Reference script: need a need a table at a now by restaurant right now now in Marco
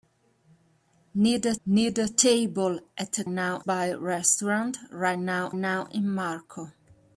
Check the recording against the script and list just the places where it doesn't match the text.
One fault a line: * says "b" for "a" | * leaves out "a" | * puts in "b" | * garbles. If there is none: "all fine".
all fine